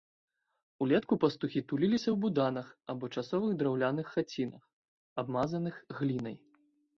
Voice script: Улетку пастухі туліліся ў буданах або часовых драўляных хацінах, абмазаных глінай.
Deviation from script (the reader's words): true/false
false